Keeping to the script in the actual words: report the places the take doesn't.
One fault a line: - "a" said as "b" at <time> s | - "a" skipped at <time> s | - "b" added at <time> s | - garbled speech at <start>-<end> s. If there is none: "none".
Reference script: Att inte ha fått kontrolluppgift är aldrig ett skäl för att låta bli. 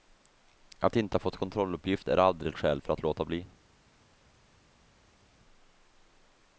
none